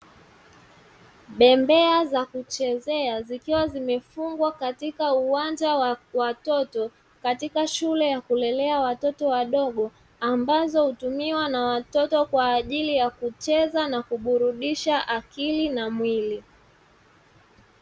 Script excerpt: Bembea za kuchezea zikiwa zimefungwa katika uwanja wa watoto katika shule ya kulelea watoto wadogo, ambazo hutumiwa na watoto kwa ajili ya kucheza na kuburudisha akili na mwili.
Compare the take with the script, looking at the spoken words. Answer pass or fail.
pass